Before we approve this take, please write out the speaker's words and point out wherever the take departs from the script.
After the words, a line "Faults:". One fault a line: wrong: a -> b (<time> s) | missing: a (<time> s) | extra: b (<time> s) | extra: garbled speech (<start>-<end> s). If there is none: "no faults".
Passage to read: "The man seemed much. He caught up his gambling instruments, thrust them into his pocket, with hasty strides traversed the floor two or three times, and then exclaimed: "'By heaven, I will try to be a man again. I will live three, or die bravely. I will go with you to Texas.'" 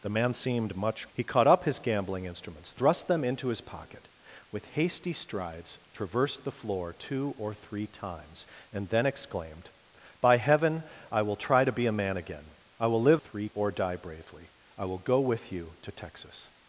"The man seemed much. He caught up his gambling instruments, thrust them into his pocket, with hasty strides traversed the floor two or three times, and then exclaimed: "'By heaven, I will try to be a man again. I will live three, or die bravely. I will go with you to Texas.'"
Faults:
no faults